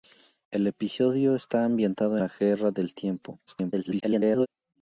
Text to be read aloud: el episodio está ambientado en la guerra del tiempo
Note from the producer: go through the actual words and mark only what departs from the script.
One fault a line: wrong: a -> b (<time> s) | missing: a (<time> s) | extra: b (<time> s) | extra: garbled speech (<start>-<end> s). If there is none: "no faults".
missing: en (2.2 s)
extra: garbled speech (3.5-4.5 s)